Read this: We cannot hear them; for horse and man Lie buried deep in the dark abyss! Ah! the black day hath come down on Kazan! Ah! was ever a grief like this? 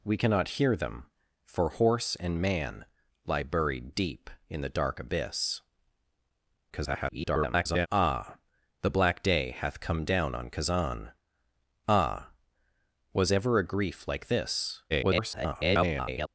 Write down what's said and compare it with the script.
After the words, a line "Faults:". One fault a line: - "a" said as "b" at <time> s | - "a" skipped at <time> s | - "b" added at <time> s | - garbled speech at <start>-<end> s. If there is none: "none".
We cannot hear them; for horse and man Lie buried deep in the dark abyss! [garbled] Ah! the black day hath come down on Kazan! Ah! was ever a grief like this? [garbled]
Faults:
- garbled speech at 6.7-7.9 s
- garbled speech at 14.9-16.3 s